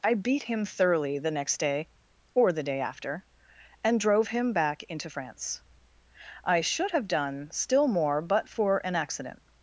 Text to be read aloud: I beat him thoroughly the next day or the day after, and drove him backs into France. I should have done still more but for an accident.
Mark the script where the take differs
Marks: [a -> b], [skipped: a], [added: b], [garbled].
I beat him thoroughly the next day or the day after, and drove him [backs -> back] into France. I should have done still more but for an accident.